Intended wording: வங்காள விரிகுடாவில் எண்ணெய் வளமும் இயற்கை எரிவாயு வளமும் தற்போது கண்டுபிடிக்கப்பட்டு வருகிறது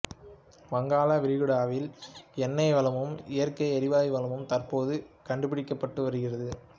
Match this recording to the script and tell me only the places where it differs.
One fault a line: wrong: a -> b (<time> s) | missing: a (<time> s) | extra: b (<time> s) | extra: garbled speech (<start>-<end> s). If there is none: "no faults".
no faults